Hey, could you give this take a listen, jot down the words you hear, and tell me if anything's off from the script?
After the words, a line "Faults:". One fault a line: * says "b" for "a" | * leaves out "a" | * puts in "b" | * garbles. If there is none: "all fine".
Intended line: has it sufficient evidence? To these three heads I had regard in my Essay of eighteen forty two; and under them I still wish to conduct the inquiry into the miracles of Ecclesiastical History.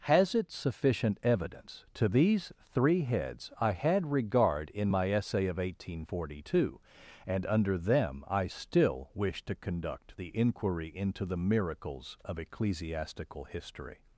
has it sufficient evidence? To these three heads I had regard in my Essay of eighteen forty two; and under them I still wish to conduct the inquiry into the miracles of Ecclesiastical History.
Faults:
all fine